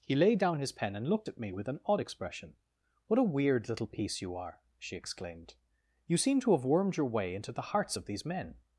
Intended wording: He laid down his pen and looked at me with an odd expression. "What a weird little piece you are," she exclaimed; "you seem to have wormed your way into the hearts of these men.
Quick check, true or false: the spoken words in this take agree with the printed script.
true